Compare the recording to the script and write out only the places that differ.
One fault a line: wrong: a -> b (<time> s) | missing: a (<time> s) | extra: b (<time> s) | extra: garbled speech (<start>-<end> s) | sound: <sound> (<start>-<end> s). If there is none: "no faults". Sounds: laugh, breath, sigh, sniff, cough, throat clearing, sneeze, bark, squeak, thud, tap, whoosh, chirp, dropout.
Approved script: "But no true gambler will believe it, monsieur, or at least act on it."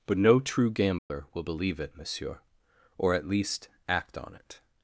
sound: dropout (1.0-1.1 s)